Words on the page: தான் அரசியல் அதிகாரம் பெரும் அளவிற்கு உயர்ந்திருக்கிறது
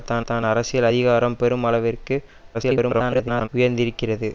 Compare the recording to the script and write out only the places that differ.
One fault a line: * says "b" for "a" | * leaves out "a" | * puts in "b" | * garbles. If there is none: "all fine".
* puts in "தான்"
* garbles